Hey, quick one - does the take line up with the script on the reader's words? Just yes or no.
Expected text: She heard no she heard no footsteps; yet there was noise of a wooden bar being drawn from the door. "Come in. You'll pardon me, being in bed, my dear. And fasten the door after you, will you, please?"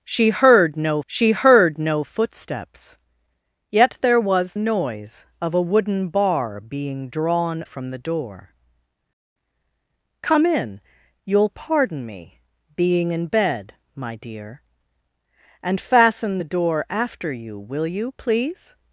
yes